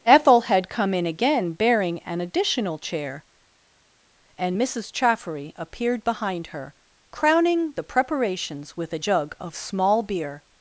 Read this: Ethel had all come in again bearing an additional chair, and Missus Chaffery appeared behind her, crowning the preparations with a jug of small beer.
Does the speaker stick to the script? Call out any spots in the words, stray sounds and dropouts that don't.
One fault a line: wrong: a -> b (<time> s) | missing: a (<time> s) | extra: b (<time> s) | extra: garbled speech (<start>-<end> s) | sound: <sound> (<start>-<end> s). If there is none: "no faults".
missing: all (0.7 s)